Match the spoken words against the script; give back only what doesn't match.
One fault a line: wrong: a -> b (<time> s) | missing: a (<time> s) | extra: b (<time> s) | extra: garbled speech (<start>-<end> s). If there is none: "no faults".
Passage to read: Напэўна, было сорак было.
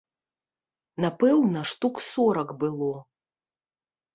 wrong: было -> штук (1.7 s)